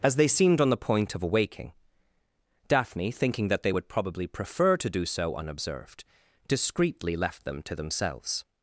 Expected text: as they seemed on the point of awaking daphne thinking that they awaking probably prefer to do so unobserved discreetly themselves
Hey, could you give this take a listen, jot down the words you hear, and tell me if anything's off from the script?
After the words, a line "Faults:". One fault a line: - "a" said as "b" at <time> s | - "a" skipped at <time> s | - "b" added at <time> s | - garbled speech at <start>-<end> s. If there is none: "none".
as they seemed on the point of awaking daphne thinking that they would probably prefer to do so unobserved discreetly left them to themselves
Faults:
- "awaking" said as "would" at 3.7 s
- "left them to" added at 7.2 s